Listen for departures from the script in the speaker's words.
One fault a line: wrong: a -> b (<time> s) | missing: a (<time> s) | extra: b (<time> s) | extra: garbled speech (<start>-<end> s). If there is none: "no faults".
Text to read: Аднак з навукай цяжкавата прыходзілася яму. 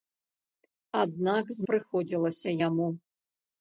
missing: навукай цяжкавата (1.7 s)